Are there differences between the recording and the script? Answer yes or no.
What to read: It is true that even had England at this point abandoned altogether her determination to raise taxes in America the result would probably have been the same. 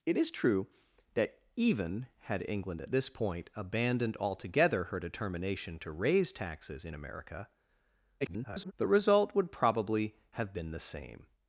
yes